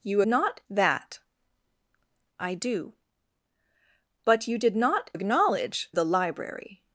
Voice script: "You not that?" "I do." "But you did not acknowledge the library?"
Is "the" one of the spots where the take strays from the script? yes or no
no